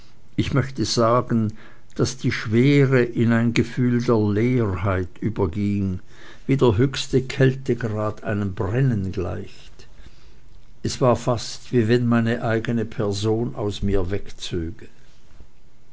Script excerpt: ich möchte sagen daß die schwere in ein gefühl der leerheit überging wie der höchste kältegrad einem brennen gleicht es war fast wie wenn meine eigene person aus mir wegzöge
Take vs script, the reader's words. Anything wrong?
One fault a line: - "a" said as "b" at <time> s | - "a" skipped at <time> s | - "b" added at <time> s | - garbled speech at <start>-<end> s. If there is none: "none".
none